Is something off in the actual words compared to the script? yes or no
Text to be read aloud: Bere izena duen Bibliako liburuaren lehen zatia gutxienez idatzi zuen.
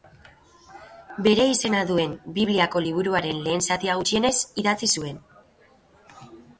no